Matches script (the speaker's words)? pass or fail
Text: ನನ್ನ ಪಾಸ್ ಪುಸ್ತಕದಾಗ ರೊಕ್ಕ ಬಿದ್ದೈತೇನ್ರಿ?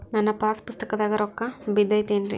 pass